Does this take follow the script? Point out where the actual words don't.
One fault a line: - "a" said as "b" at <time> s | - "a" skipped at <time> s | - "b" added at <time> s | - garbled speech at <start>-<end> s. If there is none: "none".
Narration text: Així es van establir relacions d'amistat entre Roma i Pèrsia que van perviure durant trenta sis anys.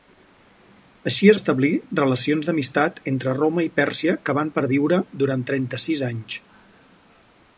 - "van" skipped at 1.4 s